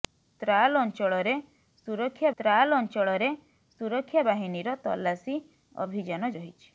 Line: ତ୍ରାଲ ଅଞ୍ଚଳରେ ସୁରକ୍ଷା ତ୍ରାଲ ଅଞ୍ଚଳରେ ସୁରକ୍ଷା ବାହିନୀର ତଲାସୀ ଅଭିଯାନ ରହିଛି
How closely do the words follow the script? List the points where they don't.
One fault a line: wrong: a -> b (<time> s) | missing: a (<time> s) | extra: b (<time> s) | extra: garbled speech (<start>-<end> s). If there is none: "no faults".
no faults